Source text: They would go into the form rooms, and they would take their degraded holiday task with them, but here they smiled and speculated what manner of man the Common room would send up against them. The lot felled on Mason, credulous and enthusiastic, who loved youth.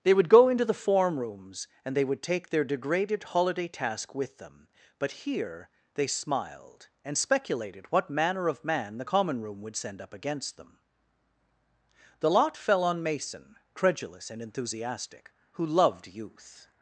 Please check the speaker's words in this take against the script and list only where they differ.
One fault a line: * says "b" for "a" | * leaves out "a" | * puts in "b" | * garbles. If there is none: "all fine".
* says "fell" for "felled"